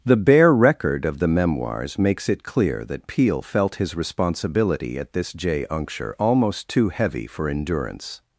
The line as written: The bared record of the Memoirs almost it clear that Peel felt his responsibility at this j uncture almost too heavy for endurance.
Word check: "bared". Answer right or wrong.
wrong